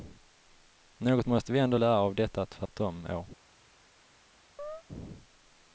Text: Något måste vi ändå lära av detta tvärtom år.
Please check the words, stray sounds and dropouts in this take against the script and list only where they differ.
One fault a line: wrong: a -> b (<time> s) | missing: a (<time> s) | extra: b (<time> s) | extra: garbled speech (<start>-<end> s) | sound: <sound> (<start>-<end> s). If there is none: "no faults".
sound: dropout (2.7-2.7 s)
sound: chirp (4.6-4.8 s)